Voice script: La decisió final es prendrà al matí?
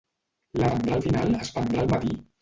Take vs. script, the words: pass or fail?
fail